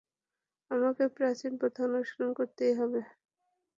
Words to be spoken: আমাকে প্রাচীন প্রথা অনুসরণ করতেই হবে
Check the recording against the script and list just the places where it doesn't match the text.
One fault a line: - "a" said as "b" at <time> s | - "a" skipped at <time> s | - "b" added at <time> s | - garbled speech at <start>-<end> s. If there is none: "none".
none